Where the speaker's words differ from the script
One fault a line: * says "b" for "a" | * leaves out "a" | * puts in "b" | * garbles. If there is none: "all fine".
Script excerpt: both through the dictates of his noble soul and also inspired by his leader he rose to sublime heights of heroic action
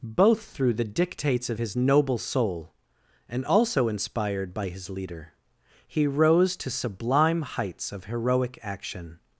all fine